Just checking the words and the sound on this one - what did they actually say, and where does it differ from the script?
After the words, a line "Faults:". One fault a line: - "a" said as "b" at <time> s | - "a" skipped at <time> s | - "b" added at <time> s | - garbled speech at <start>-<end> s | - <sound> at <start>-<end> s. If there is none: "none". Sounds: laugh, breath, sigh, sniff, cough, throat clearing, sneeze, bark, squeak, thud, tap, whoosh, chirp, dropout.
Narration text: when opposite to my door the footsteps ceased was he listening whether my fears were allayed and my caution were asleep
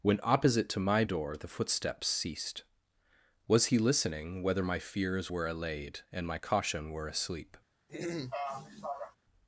when opposite to my door the footsteps ceased was he listening whether my fears were allayed and my caution were asleep
Faults:
- throat clearing at 7.9-9.2 s